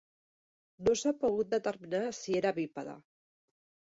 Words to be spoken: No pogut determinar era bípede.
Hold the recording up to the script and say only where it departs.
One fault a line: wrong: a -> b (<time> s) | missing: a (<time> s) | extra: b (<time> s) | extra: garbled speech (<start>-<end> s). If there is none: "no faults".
extra: s'ha (1.0 s)
extra: si (2.2 s)